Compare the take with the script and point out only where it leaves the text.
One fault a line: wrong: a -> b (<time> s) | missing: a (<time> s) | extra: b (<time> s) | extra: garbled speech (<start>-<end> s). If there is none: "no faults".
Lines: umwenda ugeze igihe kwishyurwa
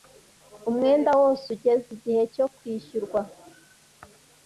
extra: wose (1.2 s)
extra: cyo (2.3 s)